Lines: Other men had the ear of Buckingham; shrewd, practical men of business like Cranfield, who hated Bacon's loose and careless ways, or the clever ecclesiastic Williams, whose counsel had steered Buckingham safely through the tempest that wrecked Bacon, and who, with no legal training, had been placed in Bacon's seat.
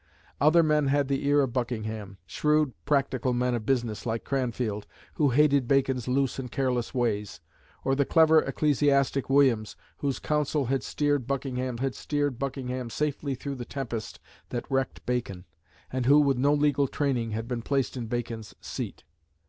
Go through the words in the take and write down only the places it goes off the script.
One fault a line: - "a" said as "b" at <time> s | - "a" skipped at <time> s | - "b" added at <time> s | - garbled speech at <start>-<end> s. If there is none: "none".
- "had steered Buckingham" added at 11.8 s